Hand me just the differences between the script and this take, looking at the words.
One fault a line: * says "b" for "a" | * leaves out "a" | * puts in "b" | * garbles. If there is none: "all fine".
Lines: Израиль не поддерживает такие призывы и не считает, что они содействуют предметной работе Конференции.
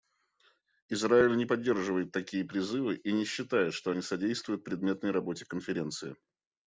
all fine